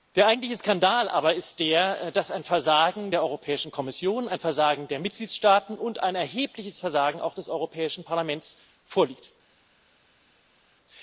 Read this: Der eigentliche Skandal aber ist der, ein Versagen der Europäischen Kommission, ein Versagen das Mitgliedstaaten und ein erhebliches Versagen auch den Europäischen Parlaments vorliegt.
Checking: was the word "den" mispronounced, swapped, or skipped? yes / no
yes